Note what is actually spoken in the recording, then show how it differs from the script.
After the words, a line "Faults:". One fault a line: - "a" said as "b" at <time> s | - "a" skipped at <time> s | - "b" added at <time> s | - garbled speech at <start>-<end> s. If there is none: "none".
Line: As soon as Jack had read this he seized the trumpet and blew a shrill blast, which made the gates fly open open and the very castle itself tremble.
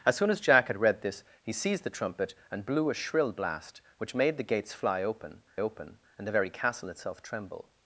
As soon as Jack had read this he seized the trumpet and blew a shrill blast, which made the gates fly open open and the very castle itself tremble.
Faults:
none